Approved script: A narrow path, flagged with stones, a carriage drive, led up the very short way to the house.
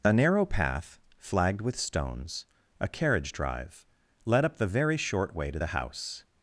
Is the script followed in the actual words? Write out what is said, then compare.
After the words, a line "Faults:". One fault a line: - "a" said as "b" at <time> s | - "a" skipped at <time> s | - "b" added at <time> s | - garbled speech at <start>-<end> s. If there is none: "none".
A narrow path, flagged with stones, a carriage drive, led up the very short way to the house.
Faults:
none